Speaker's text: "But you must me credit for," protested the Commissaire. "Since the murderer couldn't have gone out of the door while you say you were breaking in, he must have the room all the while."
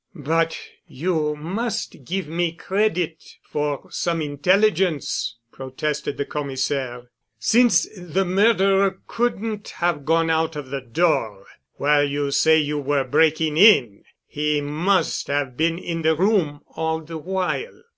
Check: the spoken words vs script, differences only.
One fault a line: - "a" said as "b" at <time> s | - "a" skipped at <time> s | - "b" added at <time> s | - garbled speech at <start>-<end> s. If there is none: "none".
- "give" added at 2.0 s
- "some intelligence" added at 3.9 s
- "been in" added at 15.6 s